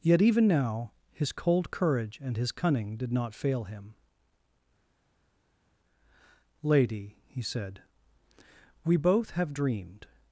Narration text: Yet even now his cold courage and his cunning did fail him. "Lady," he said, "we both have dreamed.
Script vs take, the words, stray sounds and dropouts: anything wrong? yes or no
yes